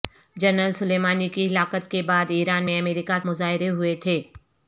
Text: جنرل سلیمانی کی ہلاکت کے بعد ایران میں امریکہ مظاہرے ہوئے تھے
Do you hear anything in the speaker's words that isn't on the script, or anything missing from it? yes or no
no